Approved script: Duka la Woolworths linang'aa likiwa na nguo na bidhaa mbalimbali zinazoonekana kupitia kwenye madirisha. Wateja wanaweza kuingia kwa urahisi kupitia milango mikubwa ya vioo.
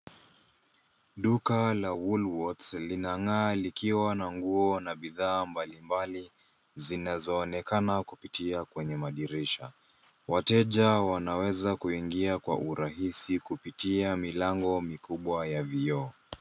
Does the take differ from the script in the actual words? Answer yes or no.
no